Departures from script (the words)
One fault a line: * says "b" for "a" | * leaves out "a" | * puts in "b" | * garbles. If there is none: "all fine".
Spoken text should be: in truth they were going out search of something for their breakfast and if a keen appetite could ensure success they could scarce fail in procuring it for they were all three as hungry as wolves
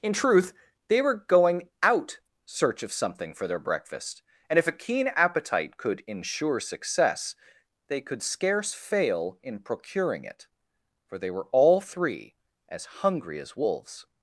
all fine